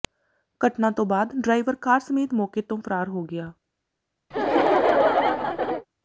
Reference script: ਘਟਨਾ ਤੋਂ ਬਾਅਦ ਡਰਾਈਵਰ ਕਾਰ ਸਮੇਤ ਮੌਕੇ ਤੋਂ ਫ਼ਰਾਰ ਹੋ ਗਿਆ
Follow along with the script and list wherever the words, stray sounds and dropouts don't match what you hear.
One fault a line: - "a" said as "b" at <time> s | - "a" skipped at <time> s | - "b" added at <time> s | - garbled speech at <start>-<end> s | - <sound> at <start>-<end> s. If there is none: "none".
- laugh at 4.3-5.9 s